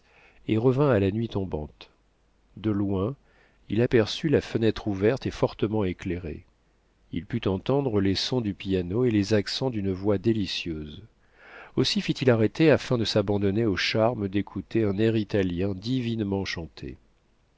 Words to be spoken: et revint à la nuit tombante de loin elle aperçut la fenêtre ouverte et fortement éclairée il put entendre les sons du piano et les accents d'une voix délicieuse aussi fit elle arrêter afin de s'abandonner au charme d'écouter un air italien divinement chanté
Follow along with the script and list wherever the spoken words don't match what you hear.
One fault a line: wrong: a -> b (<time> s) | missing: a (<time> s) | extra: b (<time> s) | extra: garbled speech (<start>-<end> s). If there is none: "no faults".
wrong: elle -> il (3.7 s)
wrong: elle -> il (12.1 s)